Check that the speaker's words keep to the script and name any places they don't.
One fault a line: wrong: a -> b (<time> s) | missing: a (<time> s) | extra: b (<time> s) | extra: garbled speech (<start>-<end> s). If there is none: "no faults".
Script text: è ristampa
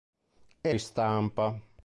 no faults